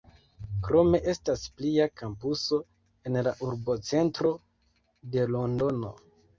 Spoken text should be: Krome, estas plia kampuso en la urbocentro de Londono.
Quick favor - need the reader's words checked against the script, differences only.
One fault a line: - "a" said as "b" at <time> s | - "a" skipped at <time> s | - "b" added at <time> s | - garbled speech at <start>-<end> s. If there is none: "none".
none